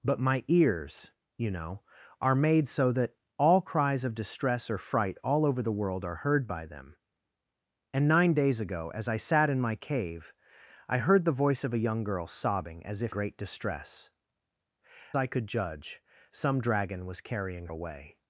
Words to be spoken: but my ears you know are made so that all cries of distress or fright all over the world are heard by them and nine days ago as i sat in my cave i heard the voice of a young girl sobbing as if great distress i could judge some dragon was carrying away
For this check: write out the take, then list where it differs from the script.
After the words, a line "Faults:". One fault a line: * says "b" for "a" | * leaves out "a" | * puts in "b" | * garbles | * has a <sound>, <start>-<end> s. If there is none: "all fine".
but my ears you know are made so that all cries of distress or fright all over the world are heard by them and nine days ago as i sat in my cave i heard the voice of a young girl sobbing as if great distress i could judge some dragon was carrying away
Faults:
all fine